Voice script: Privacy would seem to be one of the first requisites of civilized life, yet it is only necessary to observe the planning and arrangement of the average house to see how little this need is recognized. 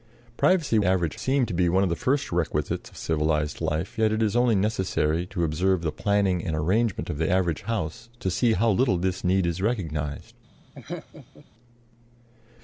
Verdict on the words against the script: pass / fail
fail